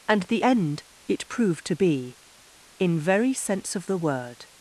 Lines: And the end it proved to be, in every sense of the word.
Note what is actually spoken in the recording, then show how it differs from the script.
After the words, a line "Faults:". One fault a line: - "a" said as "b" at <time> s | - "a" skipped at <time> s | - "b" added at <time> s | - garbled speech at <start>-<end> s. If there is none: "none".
And the end it proved to be, in very sense of the word.
Faults:
- "every" said as "very" at 3.0 s